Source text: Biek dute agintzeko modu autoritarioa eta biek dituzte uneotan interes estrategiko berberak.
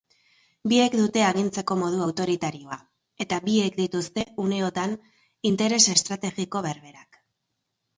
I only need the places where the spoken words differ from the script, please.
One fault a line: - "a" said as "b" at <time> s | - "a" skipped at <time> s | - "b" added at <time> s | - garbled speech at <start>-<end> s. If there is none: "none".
none